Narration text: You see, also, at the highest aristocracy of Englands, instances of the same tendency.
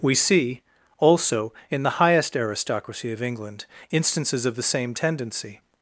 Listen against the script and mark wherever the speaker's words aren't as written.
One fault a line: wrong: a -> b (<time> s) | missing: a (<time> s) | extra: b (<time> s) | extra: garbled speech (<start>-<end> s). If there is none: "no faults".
wrong: You -> We (0.0 s)
wrong: at -> in (1.7 s)
wrong: Englands -> England (3.2 s)